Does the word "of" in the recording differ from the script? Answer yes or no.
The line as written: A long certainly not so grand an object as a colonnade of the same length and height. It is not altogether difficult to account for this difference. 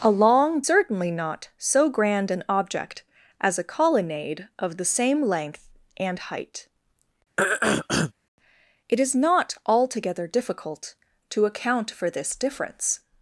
no